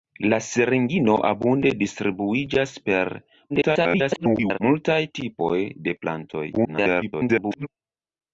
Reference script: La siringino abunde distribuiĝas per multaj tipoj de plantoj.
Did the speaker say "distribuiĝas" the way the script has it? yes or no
yes